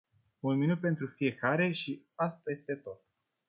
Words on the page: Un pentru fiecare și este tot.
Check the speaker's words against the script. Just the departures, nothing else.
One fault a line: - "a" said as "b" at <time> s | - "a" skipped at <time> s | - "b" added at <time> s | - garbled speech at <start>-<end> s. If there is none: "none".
- "minut" added at 0.6 s
- "asta" added at 2.1 s